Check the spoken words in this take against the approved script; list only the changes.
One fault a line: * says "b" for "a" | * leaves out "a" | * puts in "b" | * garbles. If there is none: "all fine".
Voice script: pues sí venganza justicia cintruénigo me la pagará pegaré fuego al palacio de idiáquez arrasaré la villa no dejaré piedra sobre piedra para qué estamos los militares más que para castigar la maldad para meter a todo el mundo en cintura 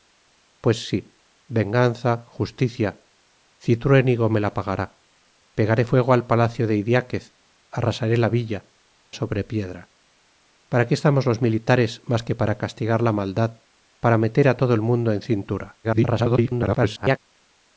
* leaves out "no dejaré piedra"
* garbles